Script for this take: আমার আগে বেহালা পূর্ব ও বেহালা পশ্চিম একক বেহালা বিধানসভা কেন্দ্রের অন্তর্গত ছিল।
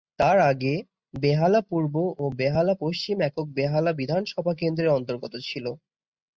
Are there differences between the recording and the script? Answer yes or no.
yes